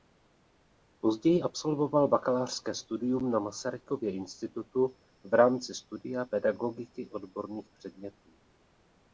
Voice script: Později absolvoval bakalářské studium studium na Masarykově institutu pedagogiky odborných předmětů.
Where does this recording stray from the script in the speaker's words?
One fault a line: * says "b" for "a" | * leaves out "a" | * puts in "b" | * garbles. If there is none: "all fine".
* leaves out "studium"
* puts in "v rámci studia"